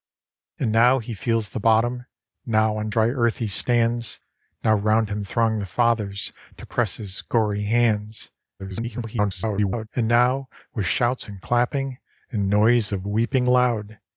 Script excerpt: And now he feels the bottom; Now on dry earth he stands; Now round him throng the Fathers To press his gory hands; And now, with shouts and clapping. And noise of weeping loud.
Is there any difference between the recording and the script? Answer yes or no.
yes